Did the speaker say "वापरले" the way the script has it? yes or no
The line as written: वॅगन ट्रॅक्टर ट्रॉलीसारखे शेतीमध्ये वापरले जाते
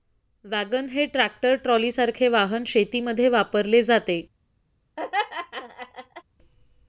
yes